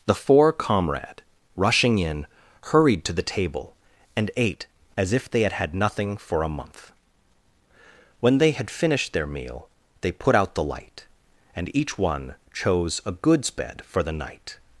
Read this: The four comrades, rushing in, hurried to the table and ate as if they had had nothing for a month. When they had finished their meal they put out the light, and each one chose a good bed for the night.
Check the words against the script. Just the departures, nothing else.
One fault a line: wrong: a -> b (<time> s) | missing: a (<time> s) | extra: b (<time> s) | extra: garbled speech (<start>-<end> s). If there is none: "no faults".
wrong: comrades -> comrade (0.5 s)
wrong: good -> goods (13.1 s)